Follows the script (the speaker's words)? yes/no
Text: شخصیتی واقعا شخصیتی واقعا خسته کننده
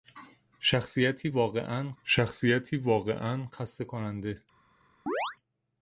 yes